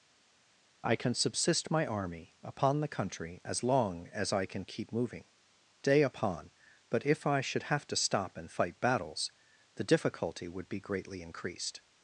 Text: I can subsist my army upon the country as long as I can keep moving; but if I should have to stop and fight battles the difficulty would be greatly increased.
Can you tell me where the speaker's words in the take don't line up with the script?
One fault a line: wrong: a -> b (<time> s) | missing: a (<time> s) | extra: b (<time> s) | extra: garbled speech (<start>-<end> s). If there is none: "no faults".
extra: day upon (5.8 s)